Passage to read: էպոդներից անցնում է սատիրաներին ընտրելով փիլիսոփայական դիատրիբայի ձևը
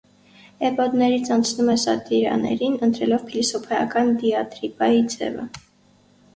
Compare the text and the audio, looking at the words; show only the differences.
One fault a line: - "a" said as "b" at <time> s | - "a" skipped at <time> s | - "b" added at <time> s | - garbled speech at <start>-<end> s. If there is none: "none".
none